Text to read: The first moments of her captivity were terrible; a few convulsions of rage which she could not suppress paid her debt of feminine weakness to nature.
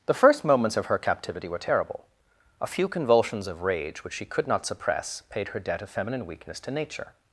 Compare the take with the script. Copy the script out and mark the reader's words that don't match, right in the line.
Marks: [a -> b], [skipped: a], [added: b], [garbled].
The first moments of her captivity were terrible; a few convulsions of rage which she could not suppress paid her debt of feminine weakness to nature.